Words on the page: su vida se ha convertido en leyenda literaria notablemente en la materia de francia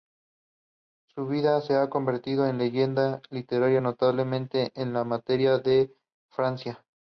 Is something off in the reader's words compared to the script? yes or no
no